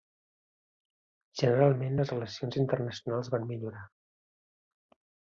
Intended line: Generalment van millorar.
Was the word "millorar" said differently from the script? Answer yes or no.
no